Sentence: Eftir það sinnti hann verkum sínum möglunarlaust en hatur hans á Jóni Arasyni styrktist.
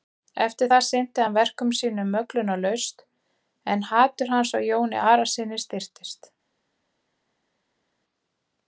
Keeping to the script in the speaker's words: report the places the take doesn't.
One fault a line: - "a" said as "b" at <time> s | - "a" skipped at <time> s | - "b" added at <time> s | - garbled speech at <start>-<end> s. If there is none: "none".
none